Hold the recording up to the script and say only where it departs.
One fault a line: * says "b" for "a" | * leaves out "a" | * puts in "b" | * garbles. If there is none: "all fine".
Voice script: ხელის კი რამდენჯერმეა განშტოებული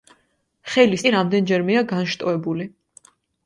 all fine